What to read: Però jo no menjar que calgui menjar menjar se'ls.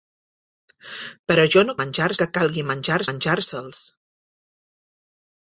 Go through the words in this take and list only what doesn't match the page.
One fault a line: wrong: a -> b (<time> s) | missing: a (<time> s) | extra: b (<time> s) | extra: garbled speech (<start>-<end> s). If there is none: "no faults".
no faults